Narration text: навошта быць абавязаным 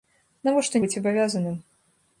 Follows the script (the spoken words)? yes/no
yes